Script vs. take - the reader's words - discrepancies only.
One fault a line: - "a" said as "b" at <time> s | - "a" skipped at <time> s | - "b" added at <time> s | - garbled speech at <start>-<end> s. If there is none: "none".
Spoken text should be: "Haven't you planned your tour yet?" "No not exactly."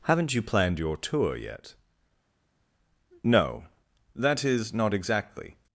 - "that is" added at 4.1 s